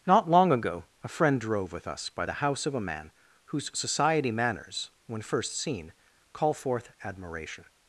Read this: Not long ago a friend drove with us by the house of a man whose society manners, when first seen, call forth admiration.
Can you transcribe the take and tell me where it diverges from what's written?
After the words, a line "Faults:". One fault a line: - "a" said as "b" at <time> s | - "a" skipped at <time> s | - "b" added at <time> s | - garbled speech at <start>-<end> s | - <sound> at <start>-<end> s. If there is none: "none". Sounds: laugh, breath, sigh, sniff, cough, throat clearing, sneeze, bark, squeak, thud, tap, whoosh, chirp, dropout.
Not long ago a friend drove with us by the house of a man whose society manners, when first seen, call forth admiration.
Faults:
none